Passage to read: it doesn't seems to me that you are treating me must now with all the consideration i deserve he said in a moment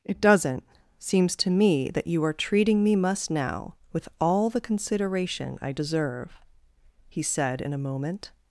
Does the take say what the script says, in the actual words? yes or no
yes